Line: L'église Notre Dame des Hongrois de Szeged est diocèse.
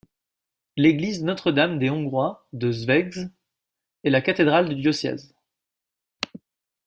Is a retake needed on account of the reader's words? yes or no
yes